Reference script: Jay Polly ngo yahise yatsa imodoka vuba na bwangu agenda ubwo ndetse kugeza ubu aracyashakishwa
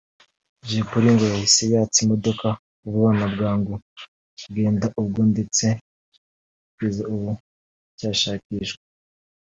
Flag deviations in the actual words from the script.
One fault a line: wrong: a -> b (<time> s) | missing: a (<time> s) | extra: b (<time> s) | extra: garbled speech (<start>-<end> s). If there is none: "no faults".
no faults